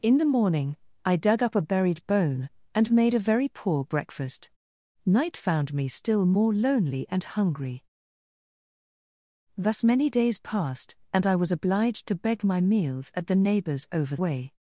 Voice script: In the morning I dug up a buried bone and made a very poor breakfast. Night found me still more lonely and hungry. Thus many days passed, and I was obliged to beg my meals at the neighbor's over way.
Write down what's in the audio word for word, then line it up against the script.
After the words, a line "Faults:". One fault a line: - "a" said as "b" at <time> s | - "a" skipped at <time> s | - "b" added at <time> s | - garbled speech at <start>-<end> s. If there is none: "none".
In the morning I dug up a buried bone and made a very poor breakfast. Night found me still more lonely and hungry. Thus many days passed, and I was obliged to beg my meals at the neighbor's over way.
Faults:
none